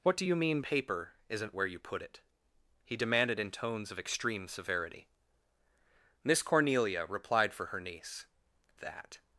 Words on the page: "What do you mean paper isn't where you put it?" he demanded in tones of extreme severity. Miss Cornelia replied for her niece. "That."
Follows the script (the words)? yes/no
yes